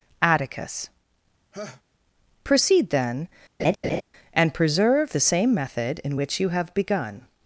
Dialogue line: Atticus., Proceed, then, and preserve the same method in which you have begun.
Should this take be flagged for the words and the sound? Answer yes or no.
yes